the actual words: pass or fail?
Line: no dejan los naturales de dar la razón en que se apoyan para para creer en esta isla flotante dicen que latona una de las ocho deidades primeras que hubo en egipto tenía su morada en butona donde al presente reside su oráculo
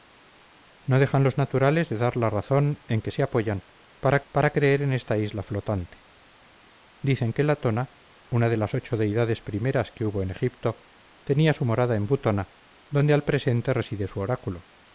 pass